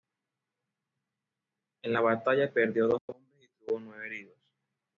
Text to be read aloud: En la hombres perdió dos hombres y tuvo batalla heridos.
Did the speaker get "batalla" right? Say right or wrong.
wrong